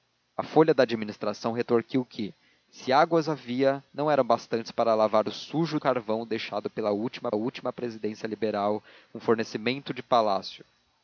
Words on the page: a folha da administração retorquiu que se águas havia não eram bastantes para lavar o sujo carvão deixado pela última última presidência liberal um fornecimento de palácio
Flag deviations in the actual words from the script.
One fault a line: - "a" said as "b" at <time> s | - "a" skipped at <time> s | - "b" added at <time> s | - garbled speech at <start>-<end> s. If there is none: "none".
none